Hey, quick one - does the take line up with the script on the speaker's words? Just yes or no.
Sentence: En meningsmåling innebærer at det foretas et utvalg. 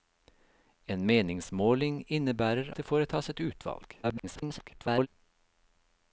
no